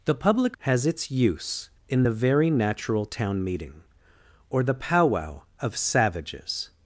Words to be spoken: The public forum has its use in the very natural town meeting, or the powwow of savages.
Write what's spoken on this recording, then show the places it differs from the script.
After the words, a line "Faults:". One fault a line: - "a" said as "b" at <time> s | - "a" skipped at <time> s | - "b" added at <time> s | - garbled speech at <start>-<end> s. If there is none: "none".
The public has its use in the very natural town meeting, or the powwow of savages.
Faults:
- "forum" skipped at 0.6 s